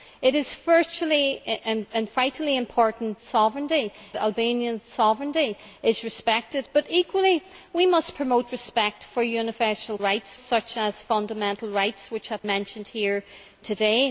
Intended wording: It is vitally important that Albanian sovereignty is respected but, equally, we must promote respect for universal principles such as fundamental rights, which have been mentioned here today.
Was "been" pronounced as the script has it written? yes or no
no